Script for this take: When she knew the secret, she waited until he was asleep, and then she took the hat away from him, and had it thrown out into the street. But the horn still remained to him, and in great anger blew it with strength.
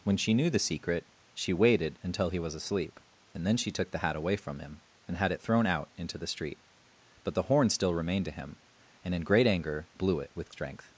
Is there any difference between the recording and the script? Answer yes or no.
no